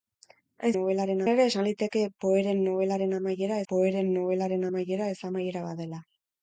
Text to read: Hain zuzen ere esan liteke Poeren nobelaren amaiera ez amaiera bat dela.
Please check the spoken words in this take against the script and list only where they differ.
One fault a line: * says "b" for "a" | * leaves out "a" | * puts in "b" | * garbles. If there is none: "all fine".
* says "nobelaren" for "zuzen"
* puts in "Poeren nobelaren amaiera"